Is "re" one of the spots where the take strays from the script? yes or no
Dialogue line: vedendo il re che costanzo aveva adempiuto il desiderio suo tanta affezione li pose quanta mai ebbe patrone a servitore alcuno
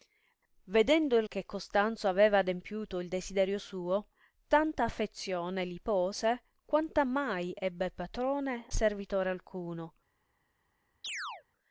yes